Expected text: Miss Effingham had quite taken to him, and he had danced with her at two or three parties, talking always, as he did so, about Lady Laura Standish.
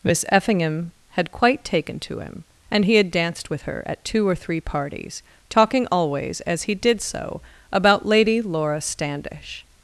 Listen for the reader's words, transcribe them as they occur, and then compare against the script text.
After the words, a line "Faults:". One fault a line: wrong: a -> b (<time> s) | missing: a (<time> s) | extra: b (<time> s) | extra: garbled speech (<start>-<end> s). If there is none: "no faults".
Miss Effingham had quite taken to him, and he had danced with her at two or three parties, talking always, as he did so, about Lady Laura Standish.
Faults:
no faults